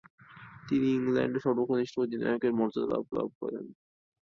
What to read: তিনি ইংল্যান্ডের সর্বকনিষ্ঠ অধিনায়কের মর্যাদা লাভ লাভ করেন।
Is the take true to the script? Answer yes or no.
yes